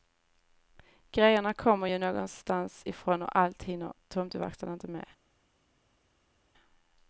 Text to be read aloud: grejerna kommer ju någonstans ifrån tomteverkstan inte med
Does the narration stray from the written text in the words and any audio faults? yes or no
yes